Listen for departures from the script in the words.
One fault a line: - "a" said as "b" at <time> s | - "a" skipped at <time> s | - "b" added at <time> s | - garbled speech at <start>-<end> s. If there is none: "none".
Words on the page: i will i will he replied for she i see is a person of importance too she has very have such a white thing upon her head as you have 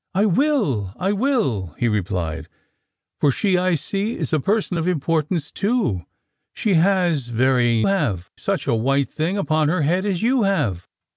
none